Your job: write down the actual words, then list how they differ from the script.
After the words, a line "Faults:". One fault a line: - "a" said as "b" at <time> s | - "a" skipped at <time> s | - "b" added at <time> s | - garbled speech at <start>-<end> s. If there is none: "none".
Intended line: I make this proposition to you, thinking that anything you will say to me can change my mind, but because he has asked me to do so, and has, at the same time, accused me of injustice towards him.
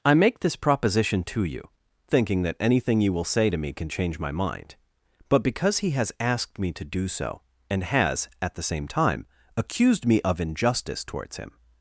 I make this proposition to you, thinking that anything you will say to me can change my mind, but because he has asked me to do so, and has, at the same time, accused me of injustice towards him.
Faults:
none